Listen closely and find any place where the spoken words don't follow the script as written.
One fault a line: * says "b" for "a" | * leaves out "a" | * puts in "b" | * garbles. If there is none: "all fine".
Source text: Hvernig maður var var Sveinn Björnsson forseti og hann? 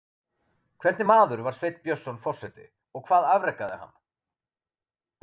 * leaves out "var"
* puts in "hvað afrekaði"